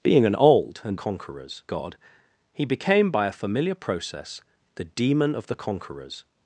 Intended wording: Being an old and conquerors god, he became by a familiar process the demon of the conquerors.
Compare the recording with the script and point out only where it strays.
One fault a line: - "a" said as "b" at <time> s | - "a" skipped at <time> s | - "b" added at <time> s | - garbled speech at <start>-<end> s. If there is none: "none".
none